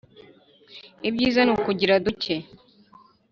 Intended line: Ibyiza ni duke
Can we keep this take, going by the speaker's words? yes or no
no